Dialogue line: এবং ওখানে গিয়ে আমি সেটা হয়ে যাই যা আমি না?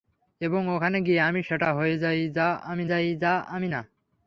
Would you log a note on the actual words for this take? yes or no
yes